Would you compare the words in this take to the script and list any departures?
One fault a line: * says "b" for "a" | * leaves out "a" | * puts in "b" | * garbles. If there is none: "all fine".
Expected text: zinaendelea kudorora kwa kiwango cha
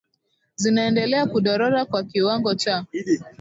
all fine